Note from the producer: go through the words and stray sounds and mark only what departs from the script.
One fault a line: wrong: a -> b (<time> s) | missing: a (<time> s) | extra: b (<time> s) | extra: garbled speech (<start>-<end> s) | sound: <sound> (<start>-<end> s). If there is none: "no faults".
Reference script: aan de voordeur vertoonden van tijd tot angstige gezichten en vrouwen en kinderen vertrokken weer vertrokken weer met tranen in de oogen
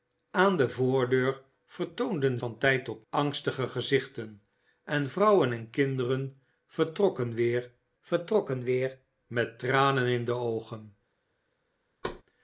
sound: thud (12.0-12.2 s)